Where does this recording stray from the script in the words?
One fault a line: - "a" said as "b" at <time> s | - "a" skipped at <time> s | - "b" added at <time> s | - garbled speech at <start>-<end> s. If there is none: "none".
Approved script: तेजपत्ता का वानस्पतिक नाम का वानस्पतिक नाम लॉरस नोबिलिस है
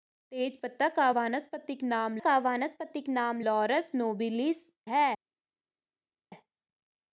none